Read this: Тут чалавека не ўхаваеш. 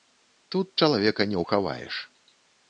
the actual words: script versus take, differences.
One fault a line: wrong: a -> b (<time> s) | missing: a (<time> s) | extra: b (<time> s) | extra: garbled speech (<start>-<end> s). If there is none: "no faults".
no faults